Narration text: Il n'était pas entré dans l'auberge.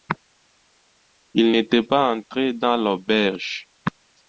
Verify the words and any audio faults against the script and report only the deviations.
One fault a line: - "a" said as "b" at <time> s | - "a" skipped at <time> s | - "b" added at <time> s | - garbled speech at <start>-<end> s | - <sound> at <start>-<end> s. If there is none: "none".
none